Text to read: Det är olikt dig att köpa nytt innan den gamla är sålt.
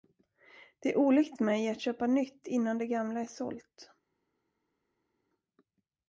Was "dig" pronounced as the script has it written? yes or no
no